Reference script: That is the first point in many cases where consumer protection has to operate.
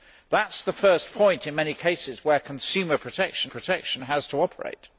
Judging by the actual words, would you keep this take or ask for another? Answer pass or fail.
fail